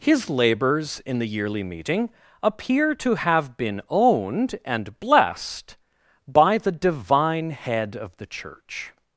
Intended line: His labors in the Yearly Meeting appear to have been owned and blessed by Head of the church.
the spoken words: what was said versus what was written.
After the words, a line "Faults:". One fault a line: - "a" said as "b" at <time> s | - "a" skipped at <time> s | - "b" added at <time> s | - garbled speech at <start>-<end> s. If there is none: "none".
His labors in the Yearly Meeting appear to have been owned and blessed by the Divine Head of the church.
Faults:
- "the Divine" added at 6.6 s